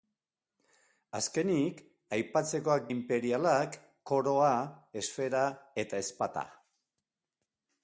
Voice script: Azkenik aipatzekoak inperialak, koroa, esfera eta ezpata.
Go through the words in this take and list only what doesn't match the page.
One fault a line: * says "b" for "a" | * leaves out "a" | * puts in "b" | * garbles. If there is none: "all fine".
all fine